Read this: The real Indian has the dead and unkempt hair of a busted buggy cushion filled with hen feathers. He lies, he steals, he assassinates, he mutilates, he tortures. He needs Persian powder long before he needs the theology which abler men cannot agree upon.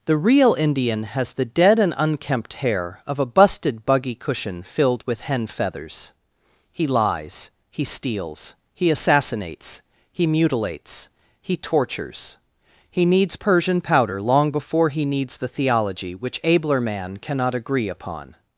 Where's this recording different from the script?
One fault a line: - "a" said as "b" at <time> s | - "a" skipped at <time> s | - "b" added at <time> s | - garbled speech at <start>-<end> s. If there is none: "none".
- "men" said as "man" at 16.8 s